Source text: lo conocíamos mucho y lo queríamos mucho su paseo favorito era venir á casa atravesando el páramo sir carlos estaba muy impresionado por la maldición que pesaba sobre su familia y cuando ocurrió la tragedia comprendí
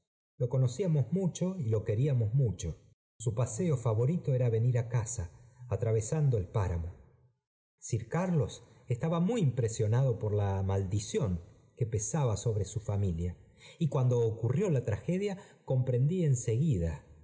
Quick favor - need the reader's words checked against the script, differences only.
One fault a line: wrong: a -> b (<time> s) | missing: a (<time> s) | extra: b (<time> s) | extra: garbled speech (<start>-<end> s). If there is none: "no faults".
no faults